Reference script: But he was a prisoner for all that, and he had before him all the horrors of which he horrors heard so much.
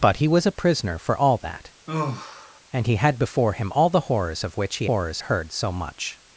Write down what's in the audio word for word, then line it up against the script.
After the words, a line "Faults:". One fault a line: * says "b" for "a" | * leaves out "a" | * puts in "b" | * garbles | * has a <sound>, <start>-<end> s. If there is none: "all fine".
But he was a prisoner for all that, and he had before him all the horrors of which he horrors heard so much.
Faults:
* has a sigh, 1.9-2.6 s